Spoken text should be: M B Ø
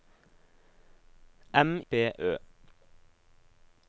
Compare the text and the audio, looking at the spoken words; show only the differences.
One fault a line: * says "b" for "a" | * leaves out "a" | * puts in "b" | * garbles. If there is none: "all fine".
all fine